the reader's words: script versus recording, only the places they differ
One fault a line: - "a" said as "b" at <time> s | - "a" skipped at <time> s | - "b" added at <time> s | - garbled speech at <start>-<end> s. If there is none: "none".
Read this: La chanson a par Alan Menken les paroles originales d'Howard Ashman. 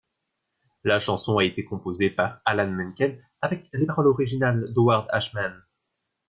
- "été composée" added at 1.4 s
- "avec" added at 3.4 s